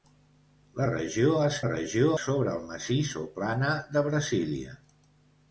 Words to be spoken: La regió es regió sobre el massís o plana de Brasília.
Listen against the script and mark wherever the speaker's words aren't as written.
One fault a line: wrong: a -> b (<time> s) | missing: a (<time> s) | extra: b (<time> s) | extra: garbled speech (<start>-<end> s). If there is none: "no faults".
no faults